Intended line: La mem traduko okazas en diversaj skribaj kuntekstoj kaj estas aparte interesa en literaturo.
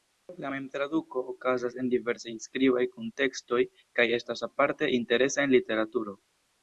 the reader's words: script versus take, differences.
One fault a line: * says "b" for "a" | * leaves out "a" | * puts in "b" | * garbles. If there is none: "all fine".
all fine